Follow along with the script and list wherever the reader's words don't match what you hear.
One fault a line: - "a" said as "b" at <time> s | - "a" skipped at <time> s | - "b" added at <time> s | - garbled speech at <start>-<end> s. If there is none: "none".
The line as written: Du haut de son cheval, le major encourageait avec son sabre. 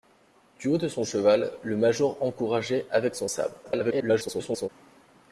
- garbled speech at 3.6-4.7 s